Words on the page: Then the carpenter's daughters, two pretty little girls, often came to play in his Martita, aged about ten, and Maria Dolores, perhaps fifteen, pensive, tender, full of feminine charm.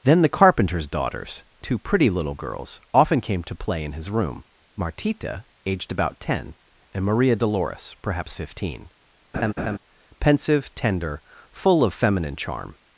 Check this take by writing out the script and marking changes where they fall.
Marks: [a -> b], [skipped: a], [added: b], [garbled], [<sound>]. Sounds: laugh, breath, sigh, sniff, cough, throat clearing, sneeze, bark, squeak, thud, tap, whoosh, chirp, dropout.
Then the carpenter's daughters, two pretty little girls, often came to play in his [added: room] Martita, aged about ten, and Maria Dolores, perhaps fifteen, [laugh] pensive, tender, full of feminine charm.